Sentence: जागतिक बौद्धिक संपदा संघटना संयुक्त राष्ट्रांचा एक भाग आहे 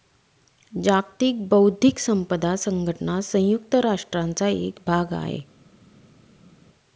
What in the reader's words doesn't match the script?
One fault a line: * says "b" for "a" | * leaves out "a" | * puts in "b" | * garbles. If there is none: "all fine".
all fine